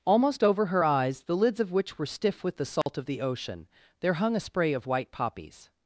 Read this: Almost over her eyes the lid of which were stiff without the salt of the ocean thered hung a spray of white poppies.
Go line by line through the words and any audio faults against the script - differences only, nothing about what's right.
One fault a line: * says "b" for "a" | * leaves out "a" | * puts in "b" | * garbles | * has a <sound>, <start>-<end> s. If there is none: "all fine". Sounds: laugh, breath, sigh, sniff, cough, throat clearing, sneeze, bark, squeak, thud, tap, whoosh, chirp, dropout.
* says "lids" for "lid"
* says "with" for "without"
* has a dropout, 2.8-2.9 s
* says "there" for "thered"